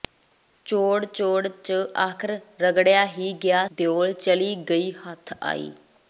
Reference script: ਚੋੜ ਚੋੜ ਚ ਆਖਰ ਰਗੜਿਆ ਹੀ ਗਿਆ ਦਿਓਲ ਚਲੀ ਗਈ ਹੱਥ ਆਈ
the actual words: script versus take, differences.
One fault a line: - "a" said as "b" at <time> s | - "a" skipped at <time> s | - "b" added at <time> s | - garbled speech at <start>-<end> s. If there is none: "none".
none